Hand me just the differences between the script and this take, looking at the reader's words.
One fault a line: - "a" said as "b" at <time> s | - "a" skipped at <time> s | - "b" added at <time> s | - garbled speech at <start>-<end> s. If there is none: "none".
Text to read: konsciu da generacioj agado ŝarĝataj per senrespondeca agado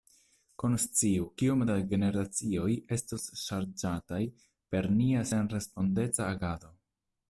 - "kiom" added at 1.4 s
- "agado" said as "estos" at 3.0 s
- "nia" added at 5.0 s